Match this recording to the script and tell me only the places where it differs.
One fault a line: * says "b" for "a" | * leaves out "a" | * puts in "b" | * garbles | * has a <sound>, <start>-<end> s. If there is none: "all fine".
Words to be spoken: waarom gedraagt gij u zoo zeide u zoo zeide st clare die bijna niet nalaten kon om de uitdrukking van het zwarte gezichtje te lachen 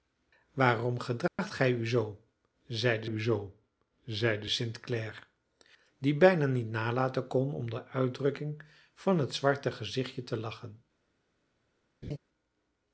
* has a dropout, 1.3-1.4 s
* has a laugh, 12.0-12.2 s